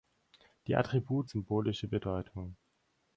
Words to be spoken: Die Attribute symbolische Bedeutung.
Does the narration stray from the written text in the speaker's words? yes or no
no